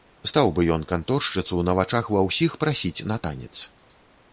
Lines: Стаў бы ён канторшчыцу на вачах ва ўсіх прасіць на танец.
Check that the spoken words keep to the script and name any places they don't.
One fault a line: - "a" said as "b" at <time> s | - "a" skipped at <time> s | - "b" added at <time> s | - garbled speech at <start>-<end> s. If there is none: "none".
none